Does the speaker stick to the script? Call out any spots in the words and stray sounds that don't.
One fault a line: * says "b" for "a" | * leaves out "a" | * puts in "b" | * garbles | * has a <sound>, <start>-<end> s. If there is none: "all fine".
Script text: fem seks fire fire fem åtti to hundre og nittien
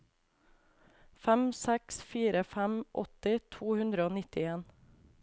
* leaves out "fire"